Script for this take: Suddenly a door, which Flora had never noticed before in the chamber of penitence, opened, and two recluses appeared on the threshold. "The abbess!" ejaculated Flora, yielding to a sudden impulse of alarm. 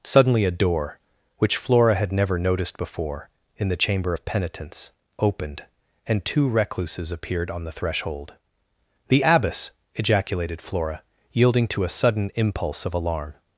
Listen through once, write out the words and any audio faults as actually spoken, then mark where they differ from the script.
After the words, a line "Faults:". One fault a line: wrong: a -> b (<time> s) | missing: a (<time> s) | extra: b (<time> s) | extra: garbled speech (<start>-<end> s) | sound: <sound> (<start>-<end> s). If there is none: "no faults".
Suddenly a door, which Flora had never noticed before in the chamber of penitence, opened, and two recluses appeared on the threshold. "The abbess!" ejaculated Flora, yielding to a sudden impulse of alarm.
Faults:
no faults